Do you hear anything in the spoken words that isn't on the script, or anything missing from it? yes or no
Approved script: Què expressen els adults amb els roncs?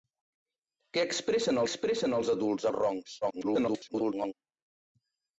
yes